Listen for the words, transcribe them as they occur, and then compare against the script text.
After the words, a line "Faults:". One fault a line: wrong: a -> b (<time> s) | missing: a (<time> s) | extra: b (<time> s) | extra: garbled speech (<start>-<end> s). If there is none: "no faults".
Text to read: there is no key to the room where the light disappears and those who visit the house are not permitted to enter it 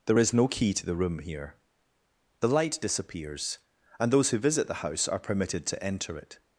there is no key to the room here the light disappears and those who visit the house are permitted to enter it
Faults:
wrong: where -> here (1.2 s)
missing: not (5.2 s)